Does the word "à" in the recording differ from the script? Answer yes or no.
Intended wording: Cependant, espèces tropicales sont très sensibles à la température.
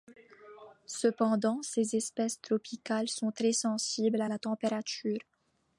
no